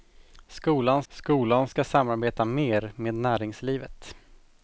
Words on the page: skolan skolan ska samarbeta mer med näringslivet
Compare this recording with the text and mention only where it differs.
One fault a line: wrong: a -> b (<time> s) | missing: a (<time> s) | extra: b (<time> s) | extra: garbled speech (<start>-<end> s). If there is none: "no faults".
no faults